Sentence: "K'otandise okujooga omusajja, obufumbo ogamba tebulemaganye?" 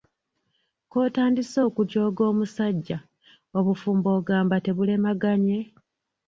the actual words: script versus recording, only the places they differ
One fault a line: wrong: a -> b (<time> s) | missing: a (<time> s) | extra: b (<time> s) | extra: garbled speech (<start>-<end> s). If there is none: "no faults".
no faults